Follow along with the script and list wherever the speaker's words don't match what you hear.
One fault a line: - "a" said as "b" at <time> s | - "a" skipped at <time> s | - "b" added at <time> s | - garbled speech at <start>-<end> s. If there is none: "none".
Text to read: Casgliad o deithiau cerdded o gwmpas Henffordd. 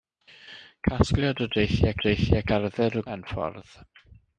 - "deithiau" added at 2.1 s
- "gwmpas" skipped at 3.1 s